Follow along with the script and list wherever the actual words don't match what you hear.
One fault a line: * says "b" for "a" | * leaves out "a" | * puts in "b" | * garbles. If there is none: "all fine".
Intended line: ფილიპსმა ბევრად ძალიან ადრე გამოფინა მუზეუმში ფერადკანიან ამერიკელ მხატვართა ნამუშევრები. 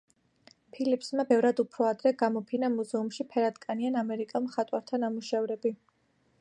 * says "უფრო" for "ძალიან"